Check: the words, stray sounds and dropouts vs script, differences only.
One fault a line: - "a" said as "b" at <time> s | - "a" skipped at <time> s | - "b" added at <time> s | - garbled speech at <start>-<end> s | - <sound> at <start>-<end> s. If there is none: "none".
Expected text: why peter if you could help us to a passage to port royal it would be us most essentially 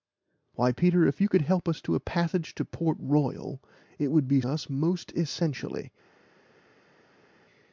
none